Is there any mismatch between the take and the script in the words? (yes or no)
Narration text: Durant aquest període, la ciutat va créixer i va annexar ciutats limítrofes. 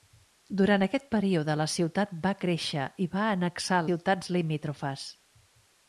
no